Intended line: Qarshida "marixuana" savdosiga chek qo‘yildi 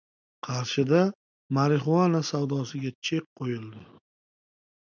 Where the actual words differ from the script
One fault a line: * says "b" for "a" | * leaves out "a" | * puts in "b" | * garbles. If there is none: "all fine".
all fine